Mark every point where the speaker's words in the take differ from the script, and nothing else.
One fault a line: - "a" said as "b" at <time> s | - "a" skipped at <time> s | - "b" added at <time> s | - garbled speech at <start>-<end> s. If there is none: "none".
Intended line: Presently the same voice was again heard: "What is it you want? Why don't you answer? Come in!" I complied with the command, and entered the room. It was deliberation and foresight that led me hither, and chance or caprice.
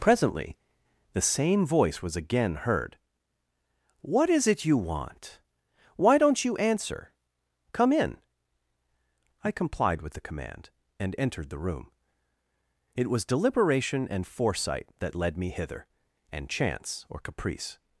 none